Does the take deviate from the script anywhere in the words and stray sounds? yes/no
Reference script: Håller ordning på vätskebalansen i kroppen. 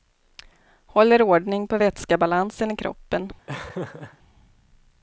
yes